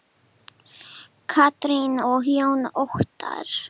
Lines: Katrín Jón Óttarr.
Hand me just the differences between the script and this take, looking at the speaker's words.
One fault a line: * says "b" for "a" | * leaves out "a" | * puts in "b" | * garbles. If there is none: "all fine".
* puts in "og"